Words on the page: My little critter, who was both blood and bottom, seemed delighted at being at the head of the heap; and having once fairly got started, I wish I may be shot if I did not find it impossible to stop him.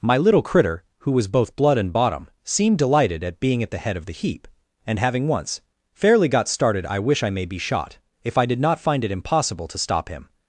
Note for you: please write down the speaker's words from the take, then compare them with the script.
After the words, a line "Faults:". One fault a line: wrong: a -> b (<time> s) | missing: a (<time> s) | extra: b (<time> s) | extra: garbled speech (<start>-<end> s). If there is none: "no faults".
My little critter, who was both blood and bottom, seemed delighted at being at the head of the heap; and having once fairly got started, I wish I may be shot if I did not find it impossible to stop him.
Faults:
no faults